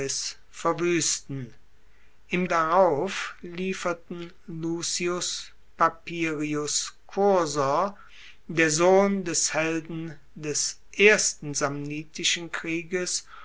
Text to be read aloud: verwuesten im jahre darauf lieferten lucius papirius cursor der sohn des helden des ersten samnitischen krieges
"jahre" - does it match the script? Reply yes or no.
no